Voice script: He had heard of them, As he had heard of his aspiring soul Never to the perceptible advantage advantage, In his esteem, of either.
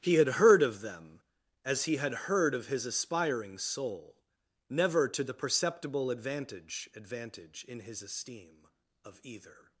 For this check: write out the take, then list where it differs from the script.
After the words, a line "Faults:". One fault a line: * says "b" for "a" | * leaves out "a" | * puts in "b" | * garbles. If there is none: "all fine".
He had heard of them, As he had heard of his aspiring soul Never to the perceptible advantage advantage, In his esteem, of either.
Faults:
all fine